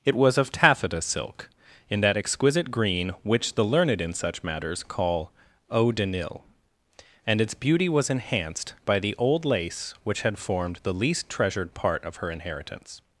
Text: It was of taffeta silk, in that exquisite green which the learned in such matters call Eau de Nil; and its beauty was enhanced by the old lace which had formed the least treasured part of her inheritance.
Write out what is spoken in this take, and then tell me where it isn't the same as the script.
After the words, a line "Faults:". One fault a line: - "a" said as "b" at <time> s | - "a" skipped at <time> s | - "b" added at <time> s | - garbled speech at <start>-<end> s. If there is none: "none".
It was of taffeta silk, in that exquisite green which the learned in such matters call Eau de Nil; and its beauty was enhanced by the old lace which had formed the least treasured part of her inheritance.
Faults:
none